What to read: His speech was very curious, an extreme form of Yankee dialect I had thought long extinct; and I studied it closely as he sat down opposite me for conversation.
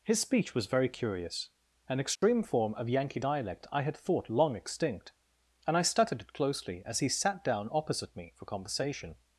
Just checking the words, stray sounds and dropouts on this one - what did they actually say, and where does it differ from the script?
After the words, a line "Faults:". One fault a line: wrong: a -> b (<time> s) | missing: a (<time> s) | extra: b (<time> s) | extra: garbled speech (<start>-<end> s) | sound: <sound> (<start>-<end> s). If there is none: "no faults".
His speech was very curious, an extreme form of Yankee dialect I had thought long extinct; and I studied it closely as he sat down opposite me for conversation.
Faults:
sound: dropout (2.2-2.2 s)